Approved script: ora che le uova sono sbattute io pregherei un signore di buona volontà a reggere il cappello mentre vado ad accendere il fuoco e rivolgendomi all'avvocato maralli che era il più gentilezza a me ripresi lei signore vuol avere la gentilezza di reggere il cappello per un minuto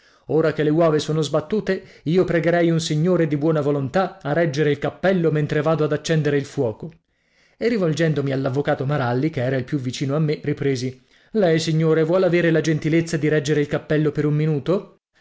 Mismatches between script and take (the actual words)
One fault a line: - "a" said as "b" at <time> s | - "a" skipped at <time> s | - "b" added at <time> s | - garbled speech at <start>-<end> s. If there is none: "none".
- "gentilezza" said as "vicino" at 9.8 s